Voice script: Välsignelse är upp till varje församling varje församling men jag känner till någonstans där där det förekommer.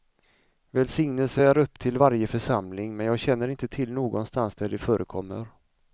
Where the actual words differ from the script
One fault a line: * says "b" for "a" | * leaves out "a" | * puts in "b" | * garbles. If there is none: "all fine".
* leaves out "varje församling"
* puts in "inte"
* leaves out "där"